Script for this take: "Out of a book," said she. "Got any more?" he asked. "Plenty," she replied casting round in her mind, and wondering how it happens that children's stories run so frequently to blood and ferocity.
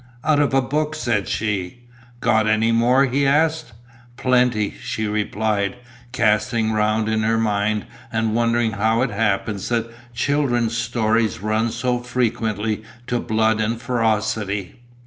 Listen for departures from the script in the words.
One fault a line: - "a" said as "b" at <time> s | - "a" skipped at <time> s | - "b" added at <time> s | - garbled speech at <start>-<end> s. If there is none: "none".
none